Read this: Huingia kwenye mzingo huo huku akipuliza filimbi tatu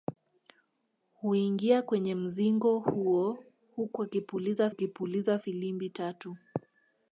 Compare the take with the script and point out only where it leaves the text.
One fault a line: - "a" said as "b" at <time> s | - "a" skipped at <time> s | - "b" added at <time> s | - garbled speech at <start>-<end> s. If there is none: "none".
- "akipuliza" added at 4.7 s